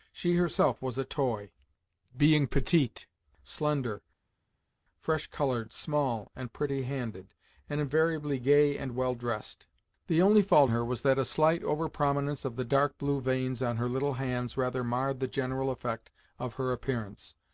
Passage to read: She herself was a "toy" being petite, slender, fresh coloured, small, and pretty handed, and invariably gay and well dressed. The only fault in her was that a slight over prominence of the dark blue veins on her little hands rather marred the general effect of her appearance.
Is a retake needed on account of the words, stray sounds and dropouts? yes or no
yes